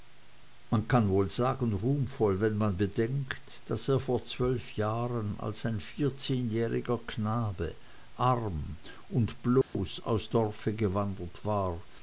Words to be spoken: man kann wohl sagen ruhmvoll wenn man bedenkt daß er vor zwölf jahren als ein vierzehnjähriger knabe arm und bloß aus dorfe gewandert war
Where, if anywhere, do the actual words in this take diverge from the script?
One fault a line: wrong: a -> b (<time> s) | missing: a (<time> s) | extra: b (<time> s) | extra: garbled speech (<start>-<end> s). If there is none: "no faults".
no faults